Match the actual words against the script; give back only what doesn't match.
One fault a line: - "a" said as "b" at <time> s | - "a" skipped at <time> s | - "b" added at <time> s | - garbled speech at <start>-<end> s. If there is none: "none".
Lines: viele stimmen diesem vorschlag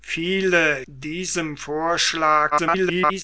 - "stimmen" skipped at 0.9 s
- garbled speech at 2.5-3.2 s